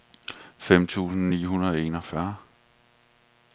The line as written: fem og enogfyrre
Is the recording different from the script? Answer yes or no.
yes